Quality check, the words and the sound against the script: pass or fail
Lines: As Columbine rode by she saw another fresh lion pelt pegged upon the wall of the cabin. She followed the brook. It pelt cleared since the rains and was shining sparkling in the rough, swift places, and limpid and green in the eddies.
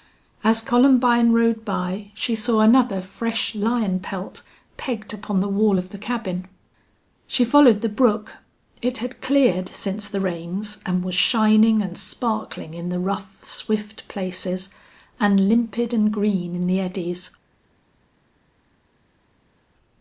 fail